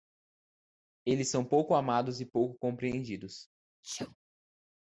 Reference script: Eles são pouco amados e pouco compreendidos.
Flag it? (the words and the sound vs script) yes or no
yes